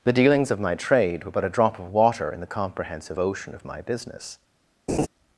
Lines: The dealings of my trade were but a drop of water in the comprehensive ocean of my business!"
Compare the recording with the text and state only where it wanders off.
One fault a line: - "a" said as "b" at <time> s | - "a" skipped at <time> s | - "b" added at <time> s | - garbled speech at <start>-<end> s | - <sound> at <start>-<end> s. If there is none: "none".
- laugh at 4.9-5.1 s